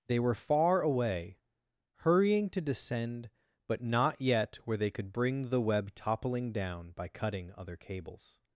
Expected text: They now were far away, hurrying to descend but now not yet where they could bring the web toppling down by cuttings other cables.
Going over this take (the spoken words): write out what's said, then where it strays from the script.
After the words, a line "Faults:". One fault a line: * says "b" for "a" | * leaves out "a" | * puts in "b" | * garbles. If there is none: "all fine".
They were far away, hurrying to descend but not yet where they could bring the web toppling down by cutting other cables.
Faults:
* leaves out "now"
* leaves out "now"
* says "cutting" for "cuttings"